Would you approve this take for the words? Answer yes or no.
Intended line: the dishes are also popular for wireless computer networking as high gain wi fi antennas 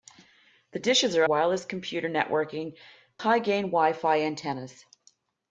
no